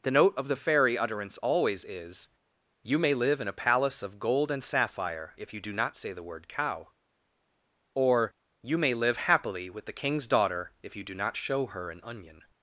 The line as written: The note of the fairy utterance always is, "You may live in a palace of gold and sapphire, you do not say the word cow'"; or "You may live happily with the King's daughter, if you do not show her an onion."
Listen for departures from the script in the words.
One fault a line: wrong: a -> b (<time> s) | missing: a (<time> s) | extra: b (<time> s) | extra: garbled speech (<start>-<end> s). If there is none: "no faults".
extra: if (5.3 s)